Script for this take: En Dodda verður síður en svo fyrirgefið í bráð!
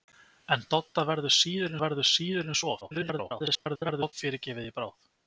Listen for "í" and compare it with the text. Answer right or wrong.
right